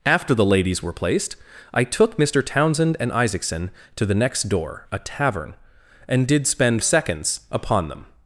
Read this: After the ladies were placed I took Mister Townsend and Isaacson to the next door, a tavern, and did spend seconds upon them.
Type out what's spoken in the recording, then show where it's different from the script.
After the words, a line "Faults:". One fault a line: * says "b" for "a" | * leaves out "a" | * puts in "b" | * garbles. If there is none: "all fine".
After the ladies were placed I took Mister Townsend and Isaacson to the next door, a tavern, and did spend seconds upon them.
Faults:
all fine